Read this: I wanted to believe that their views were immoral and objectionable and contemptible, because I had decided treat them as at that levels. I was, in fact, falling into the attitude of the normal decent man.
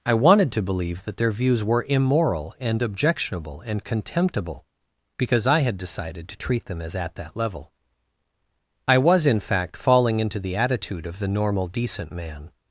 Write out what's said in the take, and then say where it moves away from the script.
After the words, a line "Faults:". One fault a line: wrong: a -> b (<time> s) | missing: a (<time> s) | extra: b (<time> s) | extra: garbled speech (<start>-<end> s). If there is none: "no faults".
I wanted to believe that their views were immoral and objectionable and contemptible, because I had decided to treat them as at that level. I was, in fact, falling into the attitude of the normal decent man.
Faults:
extra: to (6.3 s)
wrong: levels -> level (7.4 s)